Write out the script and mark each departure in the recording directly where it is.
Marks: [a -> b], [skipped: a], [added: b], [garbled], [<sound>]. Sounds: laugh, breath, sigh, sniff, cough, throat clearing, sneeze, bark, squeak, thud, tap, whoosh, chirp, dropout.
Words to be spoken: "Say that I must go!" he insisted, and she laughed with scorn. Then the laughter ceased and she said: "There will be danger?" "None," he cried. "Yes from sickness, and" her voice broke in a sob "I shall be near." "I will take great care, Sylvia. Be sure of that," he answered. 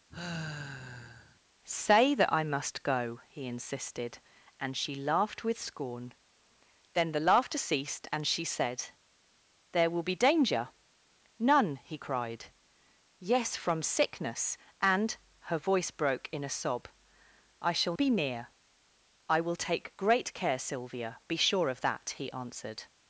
[sigh] "Say that I must go!" he insisted, and she laughed with scorn. Then the laughter ceased and she said: "There will be danger?" "None," he cried. "Yes from sickness, and" her voice broke in a sob "I shall be near." "I will take great care, Sylvia. Be sure of that," he answered.